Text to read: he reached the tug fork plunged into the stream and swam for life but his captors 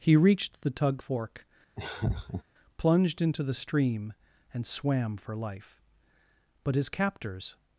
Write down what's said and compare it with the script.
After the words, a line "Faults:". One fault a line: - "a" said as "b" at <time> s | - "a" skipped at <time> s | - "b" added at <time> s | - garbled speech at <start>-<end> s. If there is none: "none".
he reached the tug fork plunged into the stream and swam for life but his captors
Faults:
none